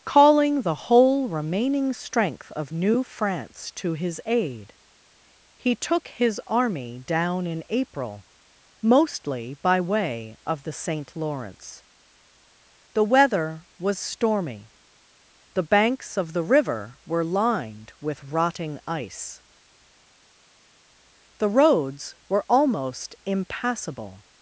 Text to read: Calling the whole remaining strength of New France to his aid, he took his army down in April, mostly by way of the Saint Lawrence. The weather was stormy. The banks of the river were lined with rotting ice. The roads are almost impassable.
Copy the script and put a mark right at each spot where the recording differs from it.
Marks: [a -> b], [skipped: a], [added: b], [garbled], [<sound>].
Calling the whole remaining strength of New France to his aid, he took his army down in April, mostly by way of the Saint Lawrence. The weather was stormy. The banks of the river were lined with rotting ice. The roads [are -> were] almost impassable.